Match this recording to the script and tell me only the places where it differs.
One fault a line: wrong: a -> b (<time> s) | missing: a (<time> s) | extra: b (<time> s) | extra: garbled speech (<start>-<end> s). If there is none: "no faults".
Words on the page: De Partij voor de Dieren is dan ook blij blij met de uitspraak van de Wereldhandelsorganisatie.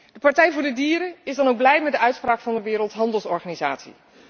missing: blij (1.8 s)